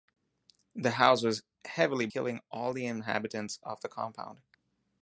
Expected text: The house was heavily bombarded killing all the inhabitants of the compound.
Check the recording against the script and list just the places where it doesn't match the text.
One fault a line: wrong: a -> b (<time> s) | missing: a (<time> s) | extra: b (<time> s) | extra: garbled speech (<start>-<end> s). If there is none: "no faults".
missing: bombarded (2.1 s)